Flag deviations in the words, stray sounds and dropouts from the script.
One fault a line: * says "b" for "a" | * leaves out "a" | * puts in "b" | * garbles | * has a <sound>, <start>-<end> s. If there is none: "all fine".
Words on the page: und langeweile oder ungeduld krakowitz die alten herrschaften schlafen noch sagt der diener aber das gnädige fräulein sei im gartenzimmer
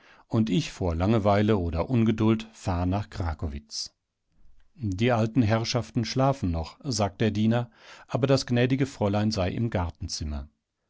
* puts in "ich vor"
* puts in "fahr nach"